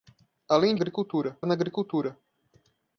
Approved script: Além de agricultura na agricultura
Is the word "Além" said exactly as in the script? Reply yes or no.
yes